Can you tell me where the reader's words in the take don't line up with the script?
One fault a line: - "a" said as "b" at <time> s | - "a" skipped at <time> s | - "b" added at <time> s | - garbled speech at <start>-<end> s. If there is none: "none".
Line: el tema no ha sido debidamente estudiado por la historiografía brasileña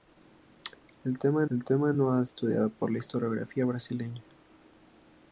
- "el tema" added at 1.5 s
- "sido debidamente" skipped at 2.2 s